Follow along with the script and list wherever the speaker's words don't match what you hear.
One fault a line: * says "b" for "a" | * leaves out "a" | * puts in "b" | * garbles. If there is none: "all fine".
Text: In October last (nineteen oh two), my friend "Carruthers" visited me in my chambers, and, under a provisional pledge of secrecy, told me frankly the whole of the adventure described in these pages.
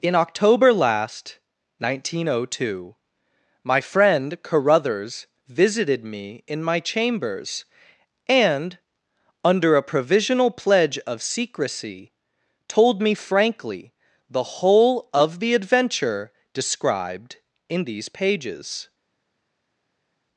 all fine